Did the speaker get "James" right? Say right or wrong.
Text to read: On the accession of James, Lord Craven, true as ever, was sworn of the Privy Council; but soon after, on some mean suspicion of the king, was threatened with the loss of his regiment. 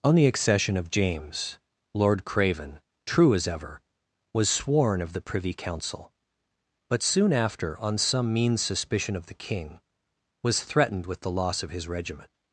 right